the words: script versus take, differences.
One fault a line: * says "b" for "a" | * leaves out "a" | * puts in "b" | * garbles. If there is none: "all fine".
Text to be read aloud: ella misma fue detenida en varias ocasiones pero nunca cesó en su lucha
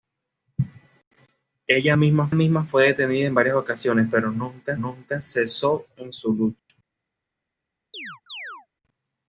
* puts in "misma"
* puts in "nunca"